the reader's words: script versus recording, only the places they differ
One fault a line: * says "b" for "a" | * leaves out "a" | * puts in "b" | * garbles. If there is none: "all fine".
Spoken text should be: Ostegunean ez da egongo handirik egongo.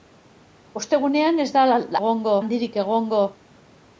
all fine